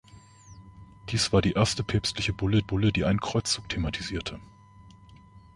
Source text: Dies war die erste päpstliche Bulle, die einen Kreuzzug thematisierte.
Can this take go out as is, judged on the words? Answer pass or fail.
fail